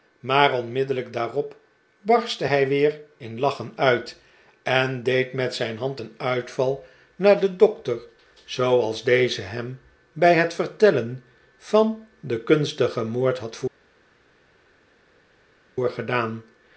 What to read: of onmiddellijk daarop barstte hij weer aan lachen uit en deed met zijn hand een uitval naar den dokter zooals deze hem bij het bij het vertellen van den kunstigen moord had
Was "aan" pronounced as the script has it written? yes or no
no